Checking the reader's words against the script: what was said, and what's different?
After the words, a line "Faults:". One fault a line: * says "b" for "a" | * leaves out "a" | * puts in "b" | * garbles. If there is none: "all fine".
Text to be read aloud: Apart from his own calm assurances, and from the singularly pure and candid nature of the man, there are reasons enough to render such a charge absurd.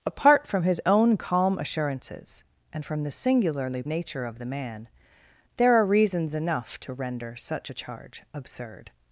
Apart from his own calm assurances, and from the singularly nature of the man, there are reasons enough to render such a charge absurd.
Faults:
* leaves out "pure and candid"